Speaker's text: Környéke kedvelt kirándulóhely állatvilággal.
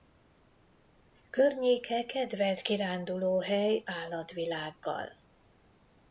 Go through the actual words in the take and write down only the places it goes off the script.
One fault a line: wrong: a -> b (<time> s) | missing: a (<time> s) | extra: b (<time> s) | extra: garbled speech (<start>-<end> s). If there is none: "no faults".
no faults